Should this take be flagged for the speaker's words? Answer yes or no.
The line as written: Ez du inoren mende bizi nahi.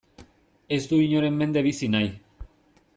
no